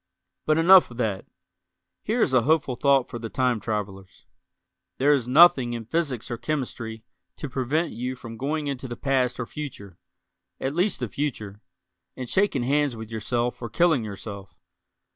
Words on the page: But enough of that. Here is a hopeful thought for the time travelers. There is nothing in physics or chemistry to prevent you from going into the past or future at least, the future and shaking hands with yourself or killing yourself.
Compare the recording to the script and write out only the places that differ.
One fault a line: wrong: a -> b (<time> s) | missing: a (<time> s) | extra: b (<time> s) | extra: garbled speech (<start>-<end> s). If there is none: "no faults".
no faults